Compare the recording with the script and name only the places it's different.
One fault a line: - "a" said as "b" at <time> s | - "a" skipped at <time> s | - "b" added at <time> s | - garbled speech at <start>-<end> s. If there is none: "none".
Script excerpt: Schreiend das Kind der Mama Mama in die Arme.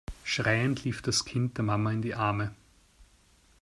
- "lief" added at 0.8 s
- "Mama" skipped at 1.9 s